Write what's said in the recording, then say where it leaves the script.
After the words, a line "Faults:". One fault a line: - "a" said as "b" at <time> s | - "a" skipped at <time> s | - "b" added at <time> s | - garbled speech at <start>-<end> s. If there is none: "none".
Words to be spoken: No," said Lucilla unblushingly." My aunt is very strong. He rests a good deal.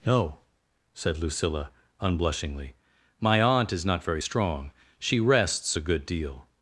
No," said Lucilla unblushingly." My aunt is not very strong. She rests a good deal.
Faults:
- "not" added at 3.9 s
- "He" said as "She" at 5.0 s